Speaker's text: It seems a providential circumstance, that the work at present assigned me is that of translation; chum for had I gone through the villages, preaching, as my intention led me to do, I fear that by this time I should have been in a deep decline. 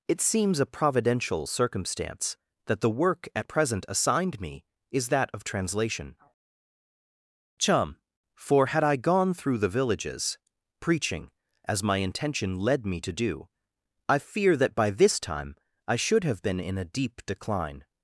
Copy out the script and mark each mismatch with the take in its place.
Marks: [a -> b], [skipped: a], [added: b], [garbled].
It seems a providential circumstance, that the work at present assigned me is that of translation; chum for had I gone through the villages, preaching, as my intention led me to do, I fear that by this time I should have been in a deep decline.